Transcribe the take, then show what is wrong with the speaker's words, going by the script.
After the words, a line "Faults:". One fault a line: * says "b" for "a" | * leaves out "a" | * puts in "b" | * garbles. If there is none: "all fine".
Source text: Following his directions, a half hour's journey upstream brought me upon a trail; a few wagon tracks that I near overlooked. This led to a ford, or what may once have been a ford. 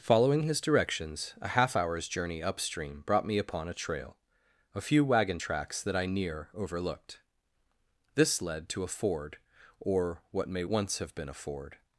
Following his directions, a half hour's journey upstream brought me upon a trail; a few wagon tracks that I near overlooked. This led to a ford, or what may once have been a ford.
Faults:
all fine